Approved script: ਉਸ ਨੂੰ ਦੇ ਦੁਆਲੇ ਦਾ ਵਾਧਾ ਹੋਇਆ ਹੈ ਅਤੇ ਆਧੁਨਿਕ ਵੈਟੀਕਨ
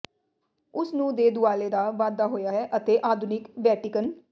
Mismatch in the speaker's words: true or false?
false